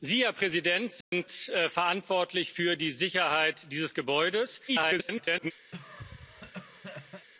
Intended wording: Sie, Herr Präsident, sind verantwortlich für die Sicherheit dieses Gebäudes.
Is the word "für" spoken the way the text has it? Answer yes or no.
yes